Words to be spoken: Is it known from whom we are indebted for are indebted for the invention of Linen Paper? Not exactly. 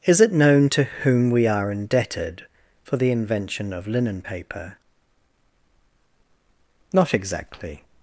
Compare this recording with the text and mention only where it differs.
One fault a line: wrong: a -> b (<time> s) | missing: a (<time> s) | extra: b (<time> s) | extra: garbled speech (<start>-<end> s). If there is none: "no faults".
wrong: from -> to (0.7 s)
missing: are indebted for (3.0 s)